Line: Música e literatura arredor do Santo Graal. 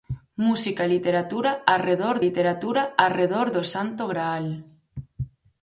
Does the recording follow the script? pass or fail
fail